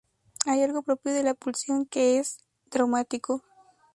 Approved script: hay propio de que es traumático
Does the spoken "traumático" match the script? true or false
true